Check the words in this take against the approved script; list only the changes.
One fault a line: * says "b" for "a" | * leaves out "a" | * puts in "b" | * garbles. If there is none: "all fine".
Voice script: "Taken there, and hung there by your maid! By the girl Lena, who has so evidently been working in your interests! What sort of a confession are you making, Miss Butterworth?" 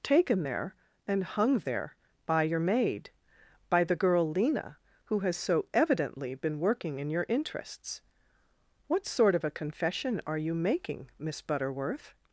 all fine